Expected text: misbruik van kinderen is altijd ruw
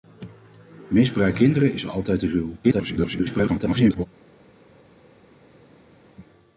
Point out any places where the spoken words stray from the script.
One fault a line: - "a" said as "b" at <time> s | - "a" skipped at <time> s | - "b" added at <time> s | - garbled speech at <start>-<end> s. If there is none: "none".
- "van" skipped at 1.4 s
- garbled speech at 2.6-4.1 s